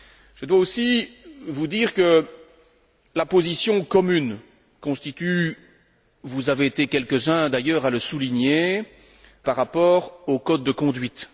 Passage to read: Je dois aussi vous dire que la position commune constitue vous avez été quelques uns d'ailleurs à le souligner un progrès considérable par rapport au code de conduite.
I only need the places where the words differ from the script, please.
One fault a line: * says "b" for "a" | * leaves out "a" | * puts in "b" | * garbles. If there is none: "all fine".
* leaves out "un progrès considérable"